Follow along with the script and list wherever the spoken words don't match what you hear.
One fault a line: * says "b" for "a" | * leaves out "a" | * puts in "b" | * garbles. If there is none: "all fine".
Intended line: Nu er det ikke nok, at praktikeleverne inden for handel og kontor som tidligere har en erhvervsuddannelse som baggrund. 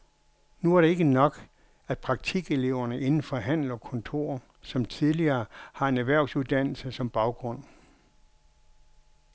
all fine